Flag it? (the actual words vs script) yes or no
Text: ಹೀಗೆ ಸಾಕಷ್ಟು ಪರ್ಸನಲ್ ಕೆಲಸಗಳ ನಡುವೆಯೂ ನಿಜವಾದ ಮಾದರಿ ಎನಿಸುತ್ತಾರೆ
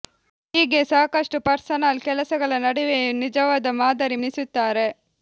no